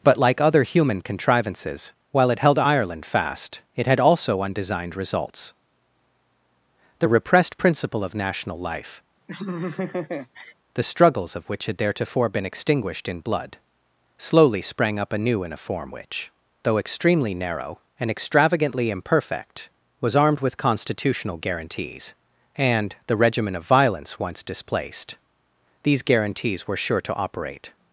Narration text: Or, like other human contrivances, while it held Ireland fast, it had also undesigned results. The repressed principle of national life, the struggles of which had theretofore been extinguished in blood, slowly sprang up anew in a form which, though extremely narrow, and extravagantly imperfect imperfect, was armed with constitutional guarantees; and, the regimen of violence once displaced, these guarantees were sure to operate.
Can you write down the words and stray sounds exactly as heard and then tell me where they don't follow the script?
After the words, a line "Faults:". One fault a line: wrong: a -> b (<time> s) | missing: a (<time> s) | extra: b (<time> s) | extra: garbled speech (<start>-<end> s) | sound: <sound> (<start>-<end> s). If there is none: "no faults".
But, like other human contrivances, while it held Ireland fast, it had also undesigned results. The repressed principle of national life, the struggles of which had theretofore been extinguished in blood, slowly sprang up anew in a form which, though extremely narrow, and extravagantly imperfect, was armed with constitutional guarantees; and, the regimen of violence once displaced, these guarantees were sure to operate.
Faults:
wrong: Or -> But (0.0 s)
sound: laugh (9.3-10.5 s)
missing: imperfect (19.7 s)